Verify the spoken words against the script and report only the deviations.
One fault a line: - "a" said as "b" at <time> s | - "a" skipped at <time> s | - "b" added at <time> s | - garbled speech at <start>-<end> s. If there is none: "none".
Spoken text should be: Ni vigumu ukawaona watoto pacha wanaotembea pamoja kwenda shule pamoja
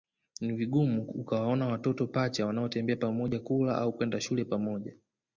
- "kula au" added at 3.4 s